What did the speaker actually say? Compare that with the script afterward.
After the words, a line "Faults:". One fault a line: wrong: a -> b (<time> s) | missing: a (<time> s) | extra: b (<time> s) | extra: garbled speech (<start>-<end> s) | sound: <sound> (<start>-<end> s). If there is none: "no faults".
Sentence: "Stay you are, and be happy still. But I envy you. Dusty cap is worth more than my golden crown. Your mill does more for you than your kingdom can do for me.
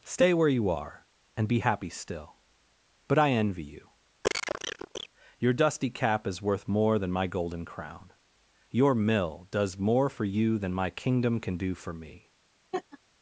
"Stay where you are, and be happy still. But I envy you. Your dusty cap is worth more than my golden crown. Your mill does more for you than my kingdom can do for me.
Faults:
extra: where (0.3 s)
sound: cough (4.2-5.1 s)
extra: Your (5.4 s)
wrong: your -> my (10.7 s)
sound: laugh (12.7-13.0 s)